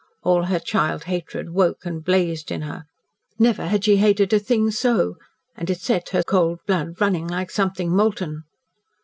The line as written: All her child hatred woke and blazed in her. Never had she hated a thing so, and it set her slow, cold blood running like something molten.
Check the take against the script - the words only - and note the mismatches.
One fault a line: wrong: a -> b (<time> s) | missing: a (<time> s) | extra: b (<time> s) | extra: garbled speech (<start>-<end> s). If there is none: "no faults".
missing: slow (6.2 s)